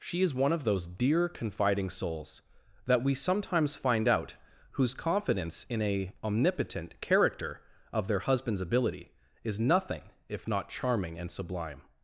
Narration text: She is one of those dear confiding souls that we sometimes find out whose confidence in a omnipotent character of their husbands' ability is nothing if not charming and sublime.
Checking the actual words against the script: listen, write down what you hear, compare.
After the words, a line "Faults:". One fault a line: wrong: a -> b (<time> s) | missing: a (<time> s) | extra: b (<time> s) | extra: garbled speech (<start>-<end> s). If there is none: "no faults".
She is one of those dear confiding souls that we sometimes find out whose confidence in a omnipotent character of their husbands' ability is nothing if not charming and sublime.
Faults:
no faults